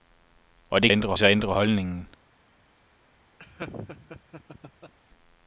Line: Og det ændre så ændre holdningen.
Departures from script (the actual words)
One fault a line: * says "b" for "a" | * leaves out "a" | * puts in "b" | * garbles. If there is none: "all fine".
all fine